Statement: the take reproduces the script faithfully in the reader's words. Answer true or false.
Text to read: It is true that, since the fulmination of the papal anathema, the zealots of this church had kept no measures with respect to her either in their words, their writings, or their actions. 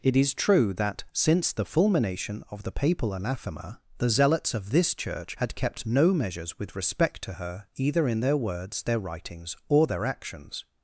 true